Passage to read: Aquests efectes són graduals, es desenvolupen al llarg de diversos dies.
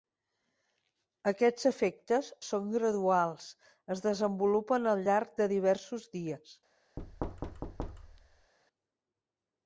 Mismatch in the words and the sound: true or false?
true